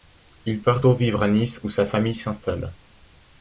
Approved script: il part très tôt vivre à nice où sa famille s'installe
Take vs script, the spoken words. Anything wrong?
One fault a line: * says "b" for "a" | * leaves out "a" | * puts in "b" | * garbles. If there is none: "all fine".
* leaves out "très"